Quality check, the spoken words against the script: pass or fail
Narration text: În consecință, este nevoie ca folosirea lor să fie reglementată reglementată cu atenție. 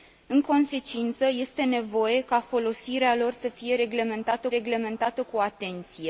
pass